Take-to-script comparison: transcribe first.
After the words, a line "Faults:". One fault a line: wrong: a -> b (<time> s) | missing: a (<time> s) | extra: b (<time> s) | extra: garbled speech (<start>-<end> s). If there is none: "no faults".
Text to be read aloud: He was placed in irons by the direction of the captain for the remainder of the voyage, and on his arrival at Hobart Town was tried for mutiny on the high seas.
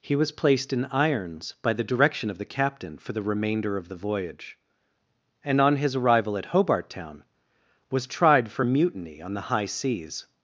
He was placed in irons by the direction of the captain for the remainder of the voyage, and on his arrival at Hobart Town was tried for mutiny on the high seas.
Faults:
no faults